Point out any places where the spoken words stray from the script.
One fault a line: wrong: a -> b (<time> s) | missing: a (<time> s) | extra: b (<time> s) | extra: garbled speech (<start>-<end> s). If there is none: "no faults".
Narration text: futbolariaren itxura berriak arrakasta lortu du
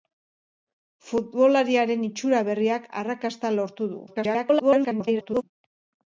extra: garbled speech (4.1-5.4 s)